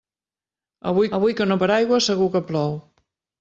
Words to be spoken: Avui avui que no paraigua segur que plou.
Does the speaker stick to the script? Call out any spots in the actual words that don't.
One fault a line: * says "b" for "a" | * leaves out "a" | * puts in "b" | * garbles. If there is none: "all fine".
all fine